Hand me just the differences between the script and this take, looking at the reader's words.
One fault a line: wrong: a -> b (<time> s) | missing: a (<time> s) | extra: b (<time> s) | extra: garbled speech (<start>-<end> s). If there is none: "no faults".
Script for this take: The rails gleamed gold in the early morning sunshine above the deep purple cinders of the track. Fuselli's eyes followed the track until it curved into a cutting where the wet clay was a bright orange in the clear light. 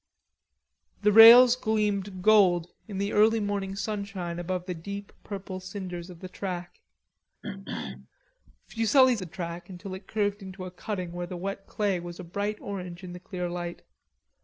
missing: eyes followed (9.2 s)